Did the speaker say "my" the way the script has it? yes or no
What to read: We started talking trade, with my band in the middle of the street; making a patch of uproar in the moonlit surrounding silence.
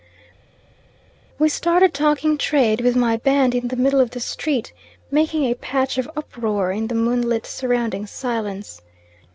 yes